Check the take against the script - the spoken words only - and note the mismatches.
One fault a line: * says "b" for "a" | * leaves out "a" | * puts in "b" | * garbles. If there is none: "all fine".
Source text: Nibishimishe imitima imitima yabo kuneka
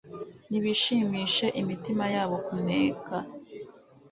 * leaves out "imitima"